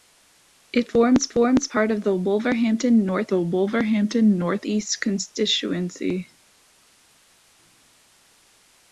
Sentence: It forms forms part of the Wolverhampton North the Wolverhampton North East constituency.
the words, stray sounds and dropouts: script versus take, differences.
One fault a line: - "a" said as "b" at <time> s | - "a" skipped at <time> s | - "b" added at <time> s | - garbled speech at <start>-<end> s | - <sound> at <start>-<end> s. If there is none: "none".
none